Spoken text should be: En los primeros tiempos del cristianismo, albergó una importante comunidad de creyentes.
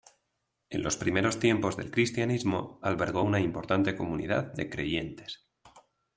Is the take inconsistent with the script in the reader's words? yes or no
no